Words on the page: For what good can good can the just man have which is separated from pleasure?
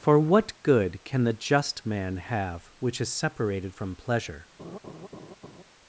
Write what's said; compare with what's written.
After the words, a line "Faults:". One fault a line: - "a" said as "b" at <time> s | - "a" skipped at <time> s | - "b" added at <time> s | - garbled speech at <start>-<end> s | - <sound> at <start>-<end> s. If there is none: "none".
For what good can the just man have which is separated from pleasure?
Faults:
- "good can" skipped at 1.2 s
- laugh at 4.6-5.6 s